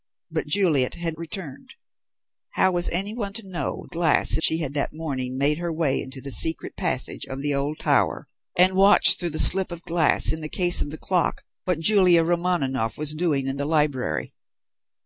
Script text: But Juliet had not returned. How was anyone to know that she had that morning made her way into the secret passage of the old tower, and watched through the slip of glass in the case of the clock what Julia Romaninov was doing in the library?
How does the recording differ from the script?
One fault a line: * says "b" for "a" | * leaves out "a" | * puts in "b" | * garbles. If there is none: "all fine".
* leaves out "not"
* says "glass" for "that"